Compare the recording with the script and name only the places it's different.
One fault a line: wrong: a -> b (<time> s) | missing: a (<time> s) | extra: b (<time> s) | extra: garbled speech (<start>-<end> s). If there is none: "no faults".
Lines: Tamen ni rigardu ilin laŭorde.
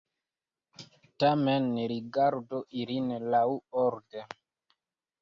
no faults